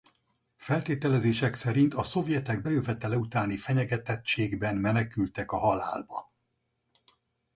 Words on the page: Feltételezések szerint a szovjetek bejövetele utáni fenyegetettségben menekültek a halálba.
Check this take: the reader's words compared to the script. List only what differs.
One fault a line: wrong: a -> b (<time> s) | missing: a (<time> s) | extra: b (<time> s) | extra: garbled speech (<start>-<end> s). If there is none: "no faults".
no faults